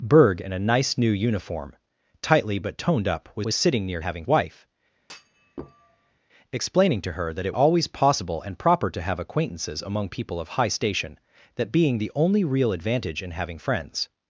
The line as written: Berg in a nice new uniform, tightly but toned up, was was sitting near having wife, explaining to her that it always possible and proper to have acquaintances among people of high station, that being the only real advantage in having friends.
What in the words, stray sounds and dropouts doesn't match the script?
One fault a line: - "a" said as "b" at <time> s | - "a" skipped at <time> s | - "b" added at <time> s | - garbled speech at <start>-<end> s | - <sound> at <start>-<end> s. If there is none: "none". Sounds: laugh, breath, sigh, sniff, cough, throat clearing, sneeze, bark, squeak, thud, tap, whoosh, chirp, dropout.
- thud at 5.0-6.2 s